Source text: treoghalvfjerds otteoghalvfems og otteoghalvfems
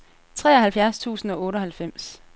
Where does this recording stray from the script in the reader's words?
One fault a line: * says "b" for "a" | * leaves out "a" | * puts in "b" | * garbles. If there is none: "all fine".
* says "tusind" for "otteoghalvfems"